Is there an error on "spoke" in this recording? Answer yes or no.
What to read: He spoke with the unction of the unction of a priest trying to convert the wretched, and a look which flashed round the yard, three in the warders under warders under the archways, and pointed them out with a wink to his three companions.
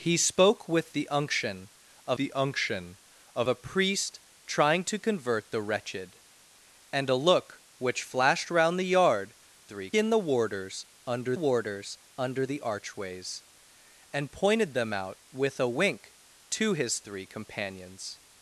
no